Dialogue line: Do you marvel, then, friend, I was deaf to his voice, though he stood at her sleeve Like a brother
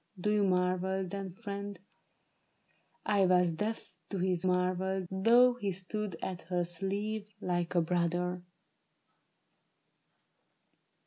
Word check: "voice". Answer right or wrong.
wrong